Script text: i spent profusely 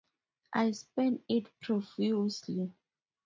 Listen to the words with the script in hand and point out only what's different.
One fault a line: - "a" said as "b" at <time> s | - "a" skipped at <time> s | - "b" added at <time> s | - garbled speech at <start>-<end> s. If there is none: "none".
- "it" added at 1.3 s